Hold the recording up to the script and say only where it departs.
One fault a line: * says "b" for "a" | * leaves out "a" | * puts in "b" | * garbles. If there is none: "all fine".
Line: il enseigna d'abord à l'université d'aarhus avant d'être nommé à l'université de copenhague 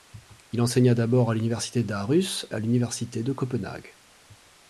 * leaves out "avant d'être nommé"